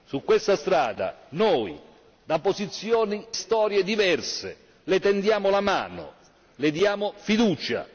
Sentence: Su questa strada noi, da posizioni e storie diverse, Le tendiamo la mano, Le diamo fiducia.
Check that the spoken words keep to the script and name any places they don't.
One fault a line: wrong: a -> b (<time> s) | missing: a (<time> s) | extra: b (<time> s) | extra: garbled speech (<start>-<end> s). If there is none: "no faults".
missing: e (3.2 s)